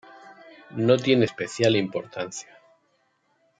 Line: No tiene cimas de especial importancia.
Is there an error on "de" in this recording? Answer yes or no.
yes